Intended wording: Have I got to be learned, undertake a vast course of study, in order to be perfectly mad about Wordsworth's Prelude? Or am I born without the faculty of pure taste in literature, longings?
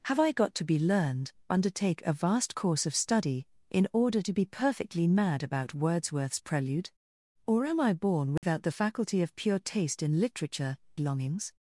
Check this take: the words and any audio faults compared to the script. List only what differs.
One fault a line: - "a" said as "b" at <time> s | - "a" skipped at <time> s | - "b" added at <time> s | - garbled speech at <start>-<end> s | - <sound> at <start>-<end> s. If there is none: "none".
- dropout at 8.4-8.4 s